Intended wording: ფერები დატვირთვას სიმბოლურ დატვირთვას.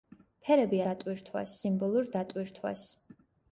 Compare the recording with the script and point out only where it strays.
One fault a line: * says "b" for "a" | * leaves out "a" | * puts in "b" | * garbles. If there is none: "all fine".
all fine